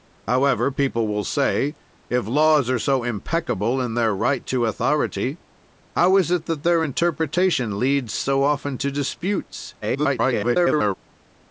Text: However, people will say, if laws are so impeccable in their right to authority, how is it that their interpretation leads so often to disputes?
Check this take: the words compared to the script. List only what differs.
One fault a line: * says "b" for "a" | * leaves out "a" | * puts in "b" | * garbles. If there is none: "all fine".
* garbles